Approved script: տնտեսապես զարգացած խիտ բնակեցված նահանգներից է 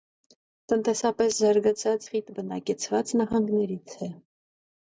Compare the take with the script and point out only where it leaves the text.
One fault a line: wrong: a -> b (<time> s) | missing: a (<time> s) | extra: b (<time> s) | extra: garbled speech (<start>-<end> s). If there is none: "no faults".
no faults